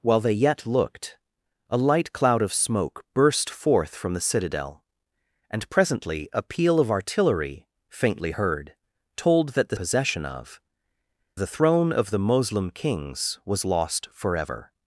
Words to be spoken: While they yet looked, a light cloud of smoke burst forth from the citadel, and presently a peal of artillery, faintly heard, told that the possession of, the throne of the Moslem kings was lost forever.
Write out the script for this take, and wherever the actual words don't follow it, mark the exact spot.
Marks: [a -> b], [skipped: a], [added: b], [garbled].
While they yet looked, a light cloud of smoke burst forth from the citadel, and presently a peal of artillery, faintly heard, told that the possession of, the throne of the Moslem kings was lost forever.